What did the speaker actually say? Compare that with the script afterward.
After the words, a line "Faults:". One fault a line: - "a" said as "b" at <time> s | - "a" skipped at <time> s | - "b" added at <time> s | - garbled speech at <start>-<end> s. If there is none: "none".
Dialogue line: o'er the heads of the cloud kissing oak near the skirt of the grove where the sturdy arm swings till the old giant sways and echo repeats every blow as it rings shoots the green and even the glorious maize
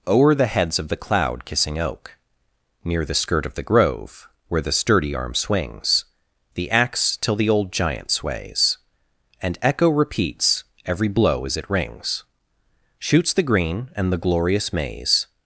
o'er the heads of the cloud kissing oak near the skirt of the grove where the sturdy arm swings the axe till the old giant sways and echo repeats every blow as it rings shoots the green and the glorious maize
Faults:
- "the axe" added at 6.5 s
- "even" skipped at 14.1 s